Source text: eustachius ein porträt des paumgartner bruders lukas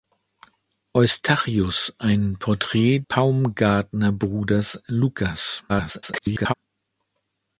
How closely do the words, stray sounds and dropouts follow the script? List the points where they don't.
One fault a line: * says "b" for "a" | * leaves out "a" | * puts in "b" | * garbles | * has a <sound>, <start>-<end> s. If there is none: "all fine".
* leaves out "des"
* garbles